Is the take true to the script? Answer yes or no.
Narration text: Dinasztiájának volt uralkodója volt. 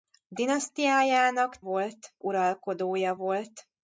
yes